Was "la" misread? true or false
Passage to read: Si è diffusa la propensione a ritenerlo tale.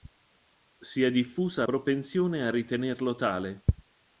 true